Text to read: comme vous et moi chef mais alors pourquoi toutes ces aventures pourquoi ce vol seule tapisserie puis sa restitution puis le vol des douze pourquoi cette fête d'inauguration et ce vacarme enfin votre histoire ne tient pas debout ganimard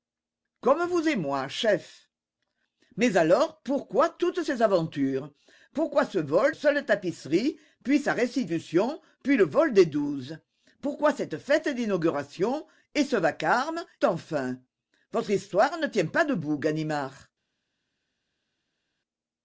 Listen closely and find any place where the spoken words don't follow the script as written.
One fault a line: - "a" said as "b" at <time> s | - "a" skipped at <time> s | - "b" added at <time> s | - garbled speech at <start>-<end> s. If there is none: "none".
none